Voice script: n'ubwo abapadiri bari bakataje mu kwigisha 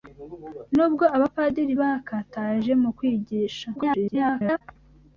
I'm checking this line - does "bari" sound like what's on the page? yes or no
no